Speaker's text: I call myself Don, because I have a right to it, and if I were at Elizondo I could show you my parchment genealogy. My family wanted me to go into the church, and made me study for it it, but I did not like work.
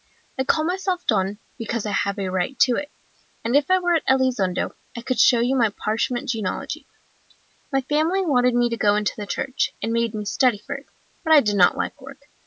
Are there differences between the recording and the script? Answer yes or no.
yes